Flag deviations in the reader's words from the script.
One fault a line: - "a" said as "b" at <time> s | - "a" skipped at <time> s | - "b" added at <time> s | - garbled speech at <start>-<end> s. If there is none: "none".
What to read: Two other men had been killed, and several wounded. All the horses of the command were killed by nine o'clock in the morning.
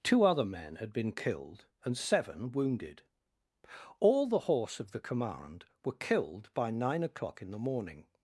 - "several" said as "seven" at 2.0 s
- "horses" said as "horse" at 4.4 s